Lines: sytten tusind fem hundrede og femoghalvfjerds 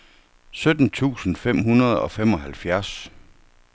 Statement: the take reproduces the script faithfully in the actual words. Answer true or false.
true